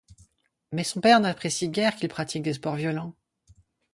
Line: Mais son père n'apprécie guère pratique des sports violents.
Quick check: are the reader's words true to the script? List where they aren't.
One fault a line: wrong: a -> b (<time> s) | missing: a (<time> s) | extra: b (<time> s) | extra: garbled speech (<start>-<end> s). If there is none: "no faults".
extra: qu'il (1.9 s)